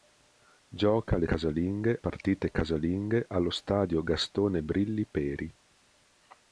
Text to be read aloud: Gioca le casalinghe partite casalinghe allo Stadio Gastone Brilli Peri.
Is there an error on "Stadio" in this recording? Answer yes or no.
no